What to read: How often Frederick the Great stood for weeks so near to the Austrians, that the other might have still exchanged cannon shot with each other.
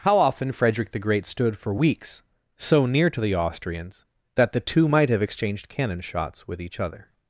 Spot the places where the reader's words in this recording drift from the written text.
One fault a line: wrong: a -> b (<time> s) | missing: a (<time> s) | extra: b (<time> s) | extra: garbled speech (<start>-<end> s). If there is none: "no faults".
wrong: other -> two (4.6 s)
missing: still (5.2 s)
wrong: shot -> shots (6.0 s)